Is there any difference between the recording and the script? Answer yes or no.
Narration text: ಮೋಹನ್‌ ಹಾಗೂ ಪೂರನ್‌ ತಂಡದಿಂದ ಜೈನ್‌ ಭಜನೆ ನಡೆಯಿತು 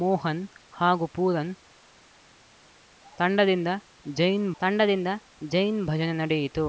yes